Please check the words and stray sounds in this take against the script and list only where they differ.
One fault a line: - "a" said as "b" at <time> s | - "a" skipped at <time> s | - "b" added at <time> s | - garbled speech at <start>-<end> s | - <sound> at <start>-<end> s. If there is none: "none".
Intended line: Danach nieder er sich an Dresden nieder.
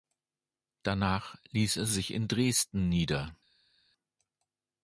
- "nieder" said as "ließ" at 1.5 s
- "an" said as "in" at 2.1 s